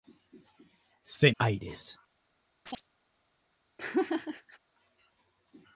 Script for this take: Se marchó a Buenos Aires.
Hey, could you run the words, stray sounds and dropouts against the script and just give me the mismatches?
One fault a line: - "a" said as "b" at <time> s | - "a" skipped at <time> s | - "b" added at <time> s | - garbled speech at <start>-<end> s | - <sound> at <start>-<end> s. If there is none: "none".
- "marchó a Buenos" skipped at 1.3 s
- chirp at 2.7-2.9 s
- laugh at 3.8-4.6 s